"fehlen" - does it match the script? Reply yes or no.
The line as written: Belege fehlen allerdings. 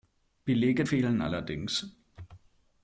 yes